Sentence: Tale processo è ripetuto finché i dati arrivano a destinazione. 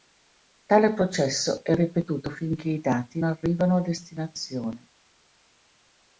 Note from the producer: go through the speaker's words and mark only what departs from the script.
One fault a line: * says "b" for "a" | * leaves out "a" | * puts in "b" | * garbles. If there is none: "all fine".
all fine